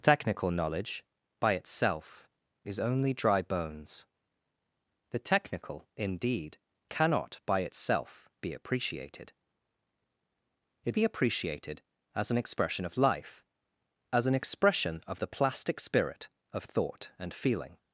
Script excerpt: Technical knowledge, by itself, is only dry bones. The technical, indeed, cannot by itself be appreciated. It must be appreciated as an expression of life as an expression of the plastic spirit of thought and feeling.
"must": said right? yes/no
no